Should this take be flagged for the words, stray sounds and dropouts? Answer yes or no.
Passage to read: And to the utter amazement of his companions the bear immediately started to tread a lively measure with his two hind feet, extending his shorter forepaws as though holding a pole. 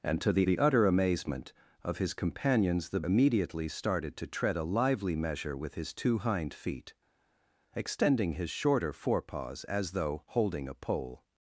yes